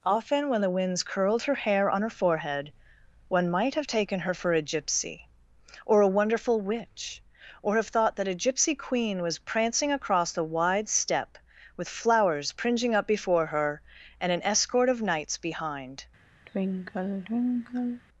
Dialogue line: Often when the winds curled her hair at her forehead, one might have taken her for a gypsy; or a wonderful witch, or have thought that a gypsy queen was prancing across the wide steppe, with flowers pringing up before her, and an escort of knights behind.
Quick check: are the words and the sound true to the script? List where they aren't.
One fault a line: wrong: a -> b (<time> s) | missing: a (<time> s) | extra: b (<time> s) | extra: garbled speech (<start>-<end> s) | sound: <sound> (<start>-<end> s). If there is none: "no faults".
wrong: at -> on (1.9 s)
sound: sigh (16.5-18.0 s)